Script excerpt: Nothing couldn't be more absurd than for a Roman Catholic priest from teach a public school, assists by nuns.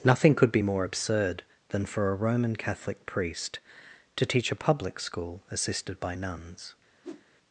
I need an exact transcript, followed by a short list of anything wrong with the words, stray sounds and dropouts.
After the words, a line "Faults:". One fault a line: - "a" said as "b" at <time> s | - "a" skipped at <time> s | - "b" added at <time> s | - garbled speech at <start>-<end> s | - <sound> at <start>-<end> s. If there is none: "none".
Nothing could be more absurd than for a Roman Catholic priest to teach a public school, assisted by nuns.
Faults:
- "couldn't" said as "could" at 0.3 s
- "from" said as "to" at 4.1 s
- "assists" said as "assisted" at 5.5 s
- whoosh at 7.0-7.3 s